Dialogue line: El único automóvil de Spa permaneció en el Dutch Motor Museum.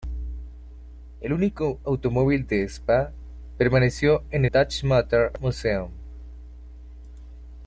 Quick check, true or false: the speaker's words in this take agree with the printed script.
false